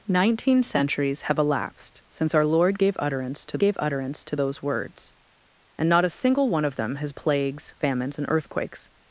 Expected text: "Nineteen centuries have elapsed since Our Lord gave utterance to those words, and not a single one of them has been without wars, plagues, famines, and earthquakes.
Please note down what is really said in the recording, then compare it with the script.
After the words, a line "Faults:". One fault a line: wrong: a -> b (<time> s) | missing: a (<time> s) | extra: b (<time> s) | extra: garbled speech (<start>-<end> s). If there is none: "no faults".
"Nineteen centuries have elapsed since Our Lord gave utterance to gave utterance to those words, and not a single one of them has plagues, famines, and earthquakes.
Faults:
extra: gave utterance to (3.6 s)
missing: been without wars (7.1 s)